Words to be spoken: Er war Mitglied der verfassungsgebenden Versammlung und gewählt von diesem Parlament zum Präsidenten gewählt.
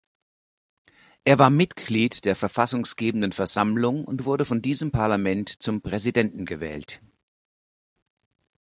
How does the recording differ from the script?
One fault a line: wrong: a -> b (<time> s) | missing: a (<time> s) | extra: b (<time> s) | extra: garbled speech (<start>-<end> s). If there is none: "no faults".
wrong: gewählt -> wurde (4.2 s)